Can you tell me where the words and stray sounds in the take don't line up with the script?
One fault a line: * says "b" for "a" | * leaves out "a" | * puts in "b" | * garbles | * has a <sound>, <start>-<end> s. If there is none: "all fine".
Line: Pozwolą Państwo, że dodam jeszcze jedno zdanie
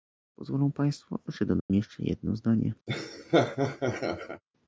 * has a dropout, 1.6-1.7 s
* has a laugh, 2.9-4.4 s